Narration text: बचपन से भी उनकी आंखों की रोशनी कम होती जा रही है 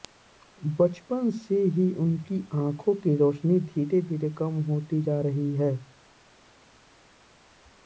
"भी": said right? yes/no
no